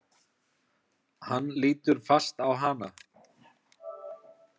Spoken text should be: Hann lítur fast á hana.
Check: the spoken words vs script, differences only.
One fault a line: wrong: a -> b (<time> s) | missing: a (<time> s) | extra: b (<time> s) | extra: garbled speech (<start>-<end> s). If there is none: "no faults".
no faults